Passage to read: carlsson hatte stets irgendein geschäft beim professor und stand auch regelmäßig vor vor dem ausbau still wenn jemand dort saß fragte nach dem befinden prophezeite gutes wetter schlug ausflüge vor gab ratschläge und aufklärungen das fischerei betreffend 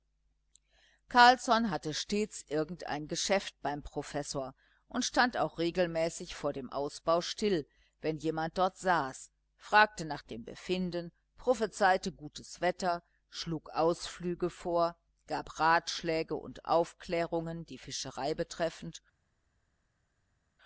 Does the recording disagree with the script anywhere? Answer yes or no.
yes